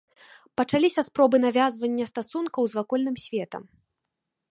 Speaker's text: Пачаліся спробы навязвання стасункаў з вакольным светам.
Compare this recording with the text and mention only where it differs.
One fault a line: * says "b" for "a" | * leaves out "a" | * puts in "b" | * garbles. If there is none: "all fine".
all fine